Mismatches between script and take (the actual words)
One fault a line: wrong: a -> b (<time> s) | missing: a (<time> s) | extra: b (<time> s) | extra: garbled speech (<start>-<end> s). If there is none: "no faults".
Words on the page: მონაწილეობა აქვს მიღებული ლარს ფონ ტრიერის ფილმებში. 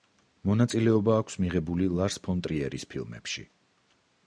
no faults